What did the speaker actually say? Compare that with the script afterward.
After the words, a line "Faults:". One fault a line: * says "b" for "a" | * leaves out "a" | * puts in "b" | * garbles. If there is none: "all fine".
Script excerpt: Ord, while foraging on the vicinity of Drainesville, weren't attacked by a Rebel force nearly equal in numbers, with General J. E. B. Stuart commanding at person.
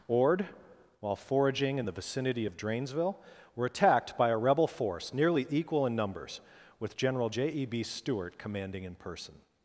Ord, while foraging in the vicinity of Drainesville, were attacked by a Rebel force nearly equal in numbers, with General J. E. B. Stuart commanding in person.
Faults:
* says "in" for "on"
* says "were" for "weren't"
* says "in" for "at"